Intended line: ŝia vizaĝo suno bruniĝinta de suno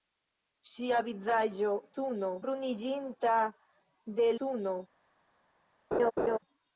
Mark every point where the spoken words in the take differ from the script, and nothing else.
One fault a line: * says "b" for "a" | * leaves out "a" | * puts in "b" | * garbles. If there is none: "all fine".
all fine